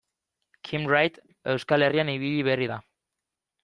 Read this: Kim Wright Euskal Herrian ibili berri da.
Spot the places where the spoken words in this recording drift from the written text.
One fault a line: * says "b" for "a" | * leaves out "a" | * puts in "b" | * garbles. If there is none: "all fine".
all fine